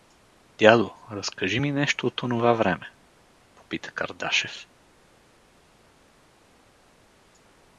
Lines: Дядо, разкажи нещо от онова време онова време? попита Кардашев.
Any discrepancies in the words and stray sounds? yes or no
yes